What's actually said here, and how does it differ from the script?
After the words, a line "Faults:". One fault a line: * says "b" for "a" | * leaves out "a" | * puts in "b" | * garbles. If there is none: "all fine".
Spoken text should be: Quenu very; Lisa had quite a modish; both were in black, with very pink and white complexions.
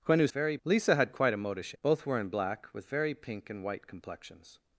Quenu very; Lisa had quite a modish; both were in black, with very pink and white complexions.
Faults:
all fine